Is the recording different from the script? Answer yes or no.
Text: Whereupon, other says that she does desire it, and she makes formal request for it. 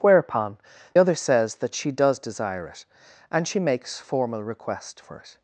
no